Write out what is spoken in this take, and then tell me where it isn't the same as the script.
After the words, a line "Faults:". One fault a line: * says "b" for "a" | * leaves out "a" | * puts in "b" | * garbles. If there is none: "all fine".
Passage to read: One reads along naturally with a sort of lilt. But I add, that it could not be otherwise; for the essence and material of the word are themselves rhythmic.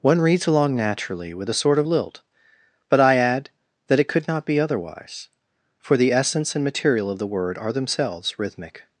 One reads along naturally with a sort of lilt. But I add, that it could not be otherwise; for the essence and material of the word are themselves rhythmic.
Faults:
all fine